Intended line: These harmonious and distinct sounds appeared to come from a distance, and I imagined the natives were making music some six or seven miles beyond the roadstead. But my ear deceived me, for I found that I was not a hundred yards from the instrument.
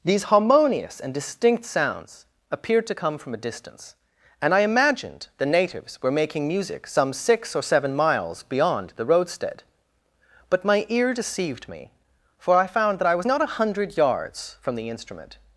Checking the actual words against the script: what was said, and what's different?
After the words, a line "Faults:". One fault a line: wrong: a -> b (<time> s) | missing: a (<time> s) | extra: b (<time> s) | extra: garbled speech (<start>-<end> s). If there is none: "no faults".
These harmonious and distinct sounds appeared to come from a distance, and I imagined the natives were making music some six or seven miles beyond the roadstead. But my ear deceived me, for I found that I was not a hundred yards from the instrument.
Faults:
no faults